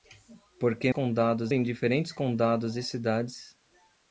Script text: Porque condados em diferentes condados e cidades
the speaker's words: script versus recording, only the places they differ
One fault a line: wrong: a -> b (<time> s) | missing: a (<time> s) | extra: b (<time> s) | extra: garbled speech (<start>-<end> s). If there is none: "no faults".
no faults